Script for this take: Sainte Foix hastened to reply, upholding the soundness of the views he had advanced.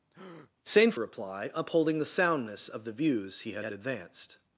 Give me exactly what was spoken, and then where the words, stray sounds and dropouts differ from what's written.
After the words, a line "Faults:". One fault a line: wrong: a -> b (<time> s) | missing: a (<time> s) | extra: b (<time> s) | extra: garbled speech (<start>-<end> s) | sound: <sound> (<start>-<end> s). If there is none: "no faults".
Sainte Reply, upholding the soundness of the views he had had advanced.
Faults:
sound: breath (0.1-0.5 s)
missing: Foix hastened to (0.9 s)
extra: had (3.6 s)